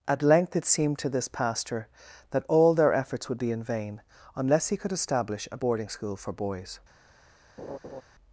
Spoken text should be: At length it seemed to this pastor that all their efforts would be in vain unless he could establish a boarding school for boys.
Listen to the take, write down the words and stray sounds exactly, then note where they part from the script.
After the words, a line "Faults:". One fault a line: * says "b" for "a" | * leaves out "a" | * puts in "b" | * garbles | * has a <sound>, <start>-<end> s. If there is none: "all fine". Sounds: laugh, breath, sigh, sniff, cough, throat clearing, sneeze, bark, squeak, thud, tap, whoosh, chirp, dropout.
At length it seemed to this pastor that all their efforts would be in vain unless he could establish a boarding school for boys.
Faults:
* has a laugh, 7.6-8.0 s